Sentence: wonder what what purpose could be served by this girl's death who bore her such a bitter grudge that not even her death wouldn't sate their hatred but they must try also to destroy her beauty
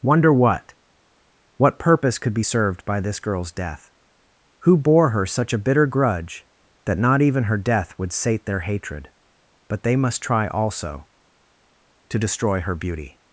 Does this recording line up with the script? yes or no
no